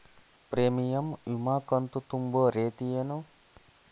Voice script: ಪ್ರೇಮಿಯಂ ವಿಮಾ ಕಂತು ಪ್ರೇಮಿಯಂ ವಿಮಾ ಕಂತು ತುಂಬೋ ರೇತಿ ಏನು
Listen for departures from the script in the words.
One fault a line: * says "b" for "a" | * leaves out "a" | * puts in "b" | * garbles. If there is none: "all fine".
* leaves out "ಪ್ರೇಮಿಯಂ ವಿಮಾ ಕಂತು"